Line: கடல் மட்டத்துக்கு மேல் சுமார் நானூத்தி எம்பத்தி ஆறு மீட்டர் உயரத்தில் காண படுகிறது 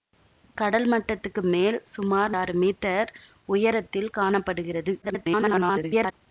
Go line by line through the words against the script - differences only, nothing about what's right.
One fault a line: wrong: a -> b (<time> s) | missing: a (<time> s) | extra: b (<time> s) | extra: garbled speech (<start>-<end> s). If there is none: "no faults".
missing: நானூத்தி எம்பத்தி (2.3 s)
extra: garbled speech (5.0-6.1 s)